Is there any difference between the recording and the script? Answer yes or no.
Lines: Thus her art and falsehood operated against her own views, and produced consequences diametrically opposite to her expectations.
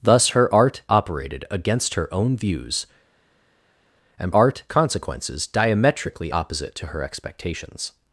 yes